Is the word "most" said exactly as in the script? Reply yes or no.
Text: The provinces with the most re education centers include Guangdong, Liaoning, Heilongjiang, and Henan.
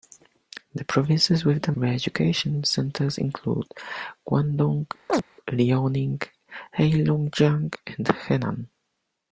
no